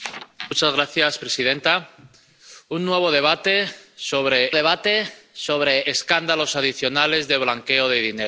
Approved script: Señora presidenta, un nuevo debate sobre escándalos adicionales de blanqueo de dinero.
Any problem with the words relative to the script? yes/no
yes